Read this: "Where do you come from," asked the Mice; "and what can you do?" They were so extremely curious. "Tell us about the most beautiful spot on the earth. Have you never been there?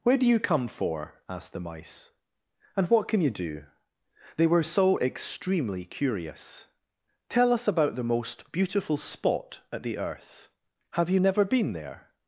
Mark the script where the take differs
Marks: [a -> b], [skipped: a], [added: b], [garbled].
"Where do you come [from," -> for] asked the Mice; "and what can you do?" They were so extremely curious. "Tell us about the most beautiful spot [on -> at] the earth. Have you never been there?